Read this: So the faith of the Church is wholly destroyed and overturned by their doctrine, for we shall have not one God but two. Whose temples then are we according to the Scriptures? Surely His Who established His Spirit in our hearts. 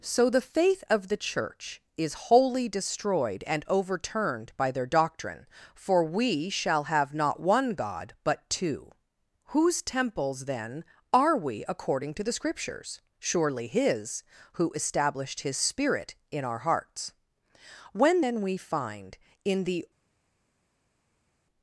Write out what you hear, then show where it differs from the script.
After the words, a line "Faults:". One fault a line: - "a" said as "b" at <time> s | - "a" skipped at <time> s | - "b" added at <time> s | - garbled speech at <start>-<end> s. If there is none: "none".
So the faith of the Church is wholly destroyed and overturned by their doctrine, for we shall have not one God but two. Whose temples then are we according to the Scriptures? Surely His Who established His Spirit in our hearts. When then we find in the
Faults:
- "When then we find in the" added at 17.9 s